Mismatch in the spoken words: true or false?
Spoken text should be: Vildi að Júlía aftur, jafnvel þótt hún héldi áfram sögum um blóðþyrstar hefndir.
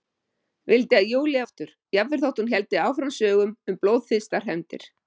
false